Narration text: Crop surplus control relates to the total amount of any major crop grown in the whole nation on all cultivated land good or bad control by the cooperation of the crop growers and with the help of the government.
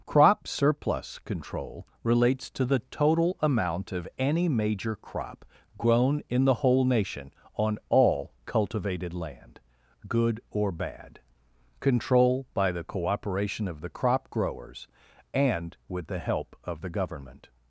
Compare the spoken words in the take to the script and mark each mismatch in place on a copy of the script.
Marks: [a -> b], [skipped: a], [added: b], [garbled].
Crop surplus control relates to the total amount of any major crop grown in the whole nation on all cultivated land good or bad control by the cooperation of the crop growers and with the help of the government.